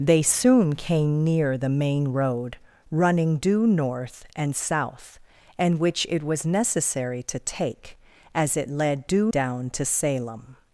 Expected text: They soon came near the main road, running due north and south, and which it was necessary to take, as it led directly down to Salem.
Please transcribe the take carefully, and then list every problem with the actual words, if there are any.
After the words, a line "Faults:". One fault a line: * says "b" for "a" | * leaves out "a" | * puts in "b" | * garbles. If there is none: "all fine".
They soon came near the main road, running due north and south, and which it was necessary to take, as it led due down to Salem.
Faults:
* says "due" for "directly"